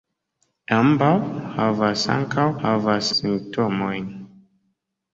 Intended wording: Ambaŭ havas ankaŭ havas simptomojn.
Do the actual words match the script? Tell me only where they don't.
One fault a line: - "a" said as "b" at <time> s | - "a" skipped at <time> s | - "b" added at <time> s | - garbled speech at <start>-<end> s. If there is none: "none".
none